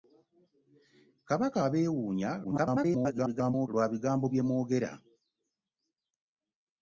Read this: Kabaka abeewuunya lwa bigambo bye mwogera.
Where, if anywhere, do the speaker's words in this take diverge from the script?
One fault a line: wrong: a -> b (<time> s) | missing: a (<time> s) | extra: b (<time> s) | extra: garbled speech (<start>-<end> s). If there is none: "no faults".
extra: garbled speech (2.4-3.7 s)